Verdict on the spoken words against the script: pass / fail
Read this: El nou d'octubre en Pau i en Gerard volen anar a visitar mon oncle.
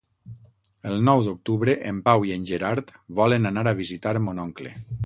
pass